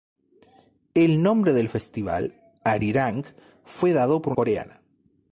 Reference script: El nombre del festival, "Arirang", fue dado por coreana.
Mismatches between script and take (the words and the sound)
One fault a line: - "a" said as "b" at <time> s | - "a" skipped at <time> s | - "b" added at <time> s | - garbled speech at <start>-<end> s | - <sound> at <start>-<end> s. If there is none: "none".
none